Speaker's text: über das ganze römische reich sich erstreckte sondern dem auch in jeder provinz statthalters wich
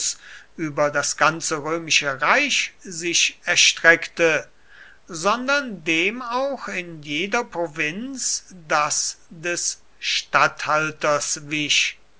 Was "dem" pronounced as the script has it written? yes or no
yes